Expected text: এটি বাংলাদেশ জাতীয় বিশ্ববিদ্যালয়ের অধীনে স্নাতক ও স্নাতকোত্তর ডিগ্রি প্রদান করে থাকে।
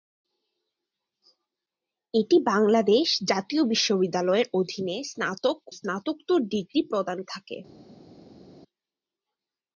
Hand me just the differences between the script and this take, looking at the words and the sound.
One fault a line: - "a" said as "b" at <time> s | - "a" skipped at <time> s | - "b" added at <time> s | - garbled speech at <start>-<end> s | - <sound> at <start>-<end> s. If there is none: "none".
- "ও" skipped at 5.6 s
- "করে" skipped at 7.2 s